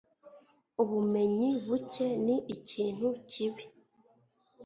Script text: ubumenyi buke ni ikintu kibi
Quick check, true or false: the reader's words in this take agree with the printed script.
true